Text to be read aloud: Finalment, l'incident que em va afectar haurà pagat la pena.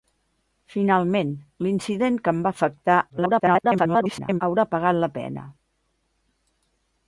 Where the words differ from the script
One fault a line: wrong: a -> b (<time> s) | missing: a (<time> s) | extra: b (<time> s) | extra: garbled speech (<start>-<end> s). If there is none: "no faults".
extra: garbled speech (3.1-4.4 s)